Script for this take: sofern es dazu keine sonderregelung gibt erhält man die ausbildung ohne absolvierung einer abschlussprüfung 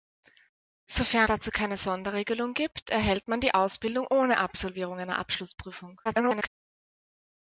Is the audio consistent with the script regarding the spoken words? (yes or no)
no